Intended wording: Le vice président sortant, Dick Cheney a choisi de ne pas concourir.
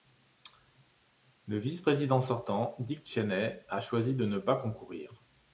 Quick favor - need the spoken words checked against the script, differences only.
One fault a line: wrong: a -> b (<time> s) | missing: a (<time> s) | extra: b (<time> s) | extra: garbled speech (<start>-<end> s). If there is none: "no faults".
no faults